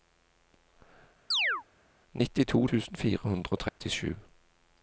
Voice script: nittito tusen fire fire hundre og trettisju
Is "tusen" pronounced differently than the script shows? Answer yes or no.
no